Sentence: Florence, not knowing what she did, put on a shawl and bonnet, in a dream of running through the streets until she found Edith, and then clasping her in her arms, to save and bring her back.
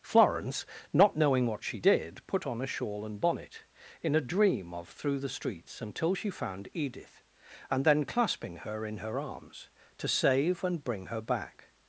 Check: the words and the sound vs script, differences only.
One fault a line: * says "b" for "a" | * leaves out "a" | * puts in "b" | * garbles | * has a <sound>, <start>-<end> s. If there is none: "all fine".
* leaves out "running"